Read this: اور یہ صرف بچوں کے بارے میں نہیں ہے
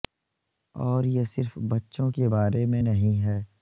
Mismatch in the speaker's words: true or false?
false